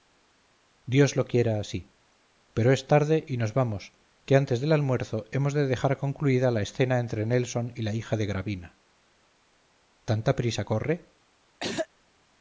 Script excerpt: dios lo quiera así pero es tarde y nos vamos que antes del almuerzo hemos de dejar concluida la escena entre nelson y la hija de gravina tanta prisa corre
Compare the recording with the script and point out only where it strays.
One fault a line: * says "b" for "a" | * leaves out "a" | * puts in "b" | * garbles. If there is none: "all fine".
all fine